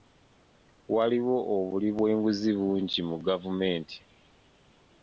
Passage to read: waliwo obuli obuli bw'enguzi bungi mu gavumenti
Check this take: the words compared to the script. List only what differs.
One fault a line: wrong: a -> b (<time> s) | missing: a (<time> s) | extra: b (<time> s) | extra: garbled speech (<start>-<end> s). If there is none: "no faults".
missing: obuli (1.9 s)